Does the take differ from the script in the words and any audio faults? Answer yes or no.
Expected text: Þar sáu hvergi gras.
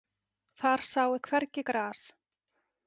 no